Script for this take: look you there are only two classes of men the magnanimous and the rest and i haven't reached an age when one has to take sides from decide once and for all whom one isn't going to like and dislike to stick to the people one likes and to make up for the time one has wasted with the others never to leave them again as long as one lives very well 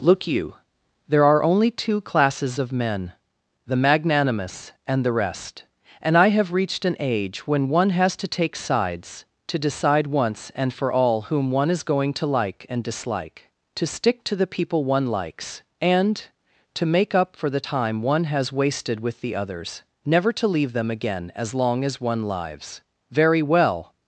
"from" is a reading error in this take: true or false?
true